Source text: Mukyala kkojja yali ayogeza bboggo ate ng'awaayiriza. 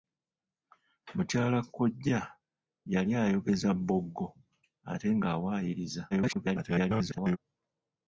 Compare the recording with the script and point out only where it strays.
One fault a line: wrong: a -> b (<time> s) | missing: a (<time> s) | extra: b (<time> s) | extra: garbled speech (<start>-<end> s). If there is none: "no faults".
extra: garbled speech (6.1-7.4 s)